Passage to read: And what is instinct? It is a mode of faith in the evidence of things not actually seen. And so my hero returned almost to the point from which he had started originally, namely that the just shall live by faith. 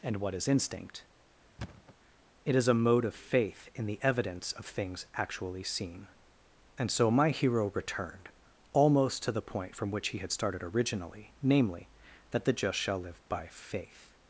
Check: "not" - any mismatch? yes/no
yes